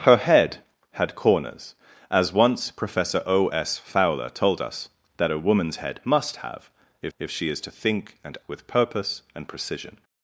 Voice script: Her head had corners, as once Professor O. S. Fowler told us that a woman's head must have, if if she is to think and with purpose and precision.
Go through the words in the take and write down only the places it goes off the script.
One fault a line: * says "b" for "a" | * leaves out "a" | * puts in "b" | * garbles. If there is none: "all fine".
all fine